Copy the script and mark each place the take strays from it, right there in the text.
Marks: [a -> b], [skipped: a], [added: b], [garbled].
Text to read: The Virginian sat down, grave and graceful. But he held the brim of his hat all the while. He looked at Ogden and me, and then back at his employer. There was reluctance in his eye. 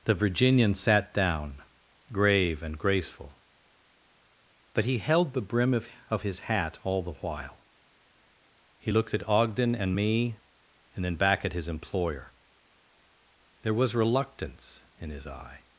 The Virginian sat down, grave and graceful. But he held the brim of [added: of] his hat all the while. He looked at Ogden and me, and then back at his employer. There was reluctance in his eye.